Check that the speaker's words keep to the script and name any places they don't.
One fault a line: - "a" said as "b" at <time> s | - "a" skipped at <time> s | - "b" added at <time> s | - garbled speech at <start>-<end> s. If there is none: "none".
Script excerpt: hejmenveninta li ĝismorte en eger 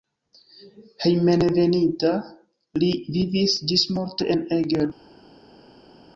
- "vivis" added at 3.2 s